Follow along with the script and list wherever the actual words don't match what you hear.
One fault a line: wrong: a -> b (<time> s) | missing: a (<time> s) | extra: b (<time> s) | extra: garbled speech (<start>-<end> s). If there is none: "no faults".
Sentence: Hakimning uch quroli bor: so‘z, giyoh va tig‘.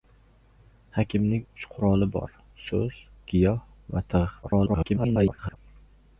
extra: garbled speech (4.4-5.6 s)